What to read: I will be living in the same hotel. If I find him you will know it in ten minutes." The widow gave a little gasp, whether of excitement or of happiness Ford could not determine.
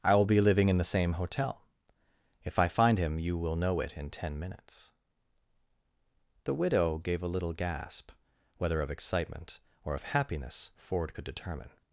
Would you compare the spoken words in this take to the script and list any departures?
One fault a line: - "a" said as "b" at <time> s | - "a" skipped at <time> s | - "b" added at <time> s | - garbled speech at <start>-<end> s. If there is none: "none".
- "not" skipped at 11.2 s